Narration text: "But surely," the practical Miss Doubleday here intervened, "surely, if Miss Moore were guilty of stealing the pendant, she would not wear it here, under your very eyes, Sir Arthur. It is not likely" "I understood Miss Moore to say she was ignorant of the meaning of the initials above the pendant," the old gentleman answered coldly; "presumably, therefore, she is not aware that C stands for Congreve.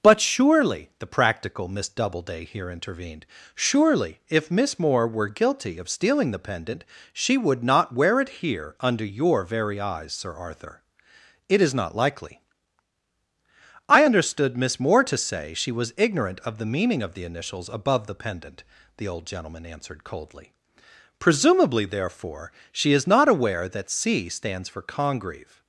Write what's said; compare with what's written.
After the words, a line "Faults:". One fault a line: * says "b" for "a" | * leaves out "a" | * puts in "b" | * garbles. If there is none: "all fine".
"But surely," the practical Miss Doubleday here intervened, "surely, if Miss Moore were guilty of stealing the pendant, she would not wear it here, under your very eyes, Sir Arthur. It is not likely" "I understood Miss Moore to say she was ignorant of the meaning of the initials above the pendant," the old gentleman answered coldly; "presumably, therefore, she is not aware that C stands for Congreve.
Faults:
all fine